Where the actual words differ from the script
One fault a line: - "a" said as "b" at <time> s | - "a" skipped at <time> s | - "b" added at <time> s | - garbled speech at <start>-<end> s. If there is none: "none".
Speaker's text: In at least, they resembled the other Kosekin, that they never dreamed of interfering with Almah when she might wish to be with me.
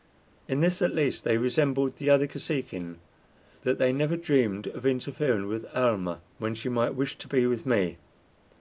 - "this" added at 0.6 s